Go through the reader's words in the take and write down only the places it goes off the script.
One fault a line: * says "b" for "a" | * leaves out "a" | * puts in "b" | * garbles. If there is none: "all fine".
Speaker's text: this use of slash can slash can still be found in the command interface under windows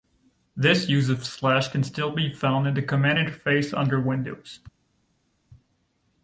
* leaves out "slash can"